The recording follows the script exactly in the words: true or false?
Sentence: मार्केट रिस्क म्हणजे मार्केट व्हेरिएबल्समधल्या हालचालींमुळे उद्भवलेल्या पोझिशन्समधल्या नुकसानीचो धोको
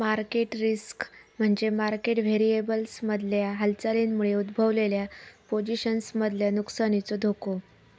true